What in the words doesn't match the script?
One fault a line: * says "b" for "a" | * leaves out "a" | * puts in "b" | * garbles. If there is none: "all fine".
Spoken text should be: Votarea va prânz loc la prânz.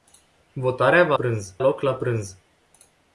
all fine